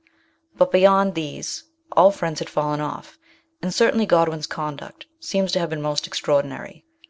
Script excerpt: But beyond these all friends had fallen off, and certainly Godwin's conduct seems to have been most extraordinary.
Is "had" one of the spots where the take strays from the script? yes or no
no